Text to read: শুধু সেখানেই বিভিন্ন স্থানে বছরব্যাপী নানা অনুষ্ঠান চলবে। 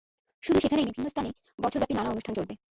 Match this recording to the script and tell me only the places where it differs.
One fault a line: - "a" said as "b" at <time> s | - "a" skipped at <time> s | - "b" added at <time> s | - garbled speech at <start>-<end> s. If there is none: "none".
none